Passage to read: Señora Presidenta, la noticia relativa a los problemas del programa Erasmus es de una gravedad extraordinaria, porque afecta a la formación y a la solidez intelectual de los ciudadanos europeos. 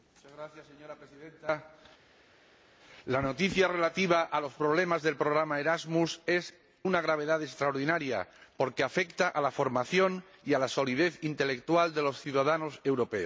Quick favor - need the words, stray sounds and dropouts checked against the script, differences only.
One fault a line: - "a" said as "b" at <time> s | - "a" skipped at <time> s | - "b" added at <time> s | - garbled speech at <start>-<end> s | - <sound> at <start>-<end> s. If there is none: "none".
- "de" skipped at 6.5 s